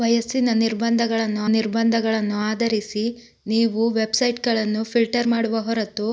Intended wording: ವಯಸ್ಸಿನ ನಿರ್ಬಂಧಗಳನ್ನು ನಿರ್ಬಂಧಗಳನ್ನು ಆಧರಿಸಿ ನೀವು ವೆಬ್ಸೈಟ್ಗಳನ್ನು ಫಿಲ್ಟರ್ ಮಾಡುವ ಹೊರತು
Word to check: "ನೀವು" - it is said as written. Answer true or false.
true